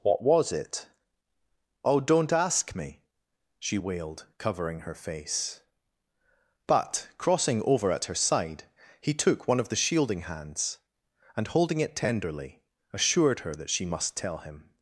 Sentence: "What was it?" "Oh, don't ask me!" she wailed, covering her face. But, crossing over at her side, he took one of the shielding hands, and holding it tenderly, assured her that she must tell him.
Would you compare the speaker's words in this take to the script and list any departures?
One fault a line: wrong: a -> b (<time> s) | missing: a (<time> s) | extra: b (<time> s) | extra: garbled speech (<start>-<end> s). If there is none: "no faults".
no faults